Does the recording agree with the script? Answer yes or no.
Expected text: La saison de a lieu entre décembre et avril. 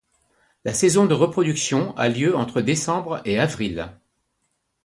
no